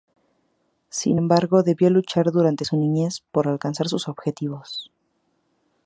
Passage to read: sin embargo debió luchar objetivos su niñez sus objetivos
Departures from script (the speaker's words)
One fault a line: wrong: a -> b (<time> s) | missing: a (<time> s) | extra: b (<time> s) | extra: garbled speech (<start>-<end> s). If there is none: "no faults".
wrong: objetivos -> durante (2.3 s)
extra: por alcanzar (3.3 s)